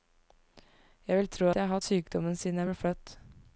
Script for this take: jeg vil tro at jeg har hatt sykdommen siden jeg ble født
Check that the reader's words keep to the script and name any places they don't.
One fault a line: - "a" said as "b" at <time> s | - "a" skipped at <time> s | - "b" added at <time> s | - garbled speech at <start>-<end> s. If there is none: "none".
- "at" skipped at 1.5 s
- "hatt" skipped at 1.8 s